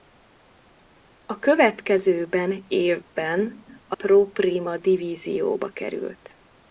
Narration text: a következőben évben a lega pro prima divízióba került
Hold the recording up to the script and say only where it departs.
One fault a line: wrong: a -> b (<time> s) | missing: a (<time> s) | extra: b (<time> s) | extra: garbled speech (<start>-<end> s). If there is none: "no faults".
missing: lega (4.0 s)